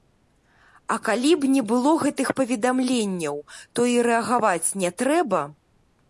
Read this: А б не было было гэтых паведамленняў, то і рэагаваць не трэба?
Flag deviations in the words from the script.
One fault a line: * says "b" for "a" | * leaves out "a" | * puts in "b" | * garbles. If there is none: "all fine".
* puts in "калі"
* leaves out "было"